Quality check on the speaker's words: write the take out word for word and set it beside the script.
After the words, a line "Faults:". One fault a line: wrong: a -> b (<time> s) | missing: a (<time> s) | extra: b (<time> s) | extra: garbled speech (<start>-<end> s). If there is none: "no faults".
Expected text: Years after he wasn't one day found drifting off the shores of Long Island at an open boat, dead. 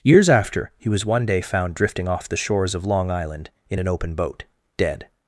Years after he was one day found drifting off the shores of Long Island in an open boat, dead.
Faults:
wrong: wasn't -> was (0.9 s)
wrong: at -> in (3.7 s)